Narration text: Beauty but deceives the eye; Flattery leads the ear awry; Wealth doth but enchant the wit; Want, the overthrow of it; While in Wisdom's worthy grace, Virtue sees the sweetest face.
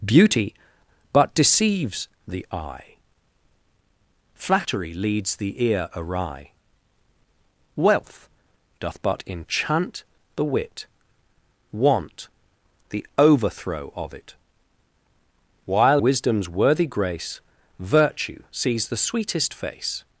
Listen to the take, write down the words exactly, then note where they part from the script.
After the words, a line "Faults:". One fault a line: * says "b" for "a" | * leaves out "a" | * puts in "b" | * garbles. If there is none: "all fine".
Beauty but deceives the eye; Flattery leads the ear awry; Wealth doth but enchant the wit; Want, the overthrow of it; While Wisdom's worthy grace, Virtue sees the sweetest face.
Faults:
* leaves out "in"